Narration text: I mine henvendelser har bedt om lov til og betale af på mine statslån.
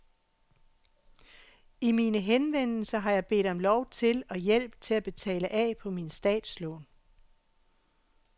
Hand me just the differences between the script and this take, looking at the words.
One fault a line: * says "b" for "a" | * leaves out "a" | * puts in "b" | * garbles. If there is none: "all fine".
* puts in "jeg"
* puts in "hjælp til at"